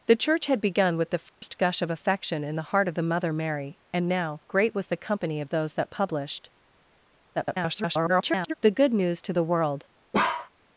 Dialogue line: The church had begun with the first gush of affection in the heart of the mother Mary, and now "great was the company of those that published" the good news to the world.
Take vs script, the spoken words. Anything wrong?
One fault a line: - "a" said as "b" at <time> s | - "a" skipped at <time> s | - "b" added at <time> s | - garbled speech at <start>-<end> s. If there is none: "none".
- garbled speech at 7.3-8.5 s